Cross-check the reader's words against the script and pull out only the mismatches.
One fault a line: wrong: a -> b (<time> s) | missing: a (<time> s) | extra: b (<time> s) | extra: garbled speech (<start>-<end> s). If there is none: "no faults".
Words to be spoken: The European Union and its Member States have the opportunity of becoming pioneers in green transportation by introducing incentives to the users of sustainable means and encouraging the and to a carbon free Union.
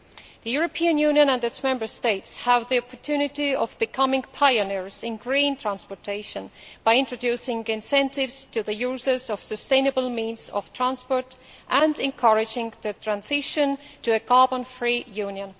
extra: of transport (10.5 s)
wrong: and -> transition (12.9 s)